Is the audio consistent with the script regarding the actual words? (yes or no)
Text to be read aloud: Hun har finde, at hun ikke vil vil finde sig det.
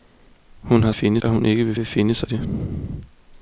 yes